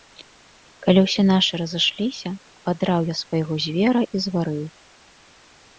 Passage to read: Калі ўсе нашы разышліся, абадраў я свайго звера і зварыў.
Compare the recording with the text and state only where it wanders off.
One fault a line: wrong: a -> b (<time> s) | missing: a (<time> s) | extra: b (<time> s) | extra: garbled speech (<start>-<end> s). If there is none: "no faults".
no faults